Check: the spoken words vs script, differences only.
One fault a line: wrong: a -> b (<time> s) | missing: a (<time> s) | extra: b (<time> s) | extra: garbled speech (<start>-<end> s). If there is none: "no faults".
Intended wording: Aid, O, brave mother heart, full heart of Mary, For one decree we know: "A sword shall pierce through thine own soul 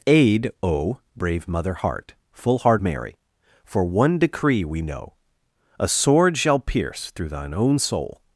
missing: of (2.8 s)